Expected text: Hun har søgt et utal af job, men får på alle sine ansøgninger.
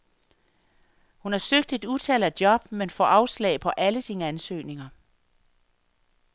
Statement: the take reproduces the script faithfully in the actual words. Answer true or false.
false